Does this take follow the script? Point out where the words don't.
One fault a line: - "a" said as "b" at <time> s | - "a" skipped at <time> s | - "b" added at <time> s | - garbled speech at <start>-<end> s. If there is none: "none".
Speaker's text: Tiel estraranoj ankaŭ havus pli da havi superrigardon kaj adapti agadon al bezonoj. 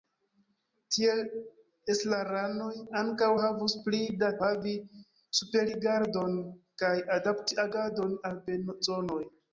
none